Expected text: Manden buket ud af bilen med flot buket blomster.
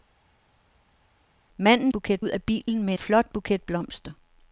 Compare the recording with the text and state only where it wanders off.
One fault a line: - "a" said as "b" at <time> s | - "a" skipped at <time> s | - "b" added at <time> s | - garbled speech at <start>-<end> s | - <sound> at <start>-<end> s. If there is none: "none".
none